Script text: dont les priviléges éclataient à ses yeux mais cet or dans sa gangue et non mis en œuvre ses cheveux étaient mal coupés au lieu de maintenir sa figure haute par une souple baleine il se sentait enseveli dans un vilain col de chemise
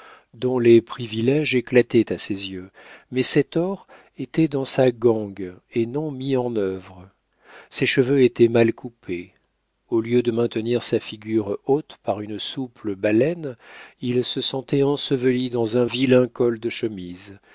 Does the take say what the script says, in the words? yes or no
no